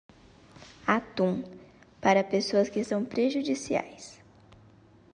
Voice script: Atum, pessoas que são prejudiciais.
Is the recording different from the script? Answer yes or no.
yes